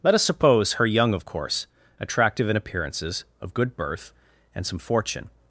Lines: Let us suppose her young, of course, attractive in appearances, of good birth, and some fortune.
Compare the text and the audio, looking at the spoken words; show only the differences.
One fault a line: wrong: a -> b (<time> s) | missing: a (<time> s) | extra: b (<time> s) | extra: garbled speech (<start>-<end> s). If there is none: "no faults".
no faults